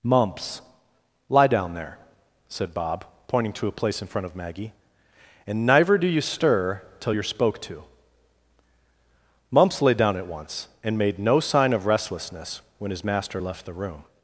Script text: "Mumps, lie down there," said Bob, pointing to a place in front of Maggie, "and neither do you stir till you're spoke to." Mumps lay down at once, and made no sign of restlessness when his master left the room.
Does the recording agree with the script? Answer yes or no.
yes